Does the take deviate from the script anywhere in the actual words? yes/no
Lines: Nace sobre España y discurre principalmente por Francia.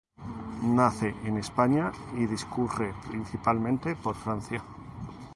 yes